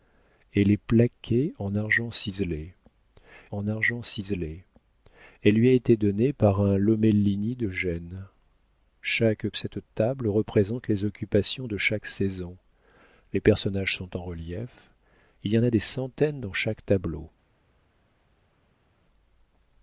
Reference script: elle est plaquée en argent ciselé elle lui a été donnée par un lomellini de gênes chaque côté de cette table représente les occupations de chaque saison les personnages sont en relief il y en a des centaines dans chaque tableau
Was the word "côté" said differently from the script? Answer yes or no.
yes